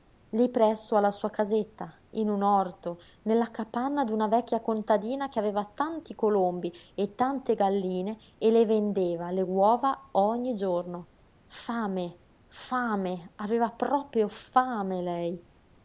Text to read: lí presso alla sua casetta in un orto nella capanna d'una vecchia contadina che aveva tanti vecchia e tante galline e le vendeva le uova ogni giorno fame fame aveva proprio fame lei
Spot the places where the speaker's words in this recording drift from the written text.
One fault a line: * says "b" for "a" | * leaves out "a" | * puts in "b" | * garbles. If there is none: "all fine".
* says "colombi" for "vecchia"